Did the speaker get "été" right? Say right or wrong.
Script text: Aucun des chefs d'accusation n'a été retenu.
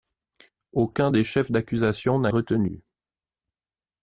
wrong